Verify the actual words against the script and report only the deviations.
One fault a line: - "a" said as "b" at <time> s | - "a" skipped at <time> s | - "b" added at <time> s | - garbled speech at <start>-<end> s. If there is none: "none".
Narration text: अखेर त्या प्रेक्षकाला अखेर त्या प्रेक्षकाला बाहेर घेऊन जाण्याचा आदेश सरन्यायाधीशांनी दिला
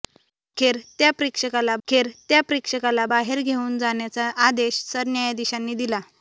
none